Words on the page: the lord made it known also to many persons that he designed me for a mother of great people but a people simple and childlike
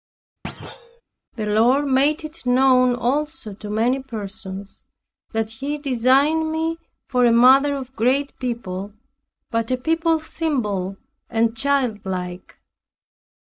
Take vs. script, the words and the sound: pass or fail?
fail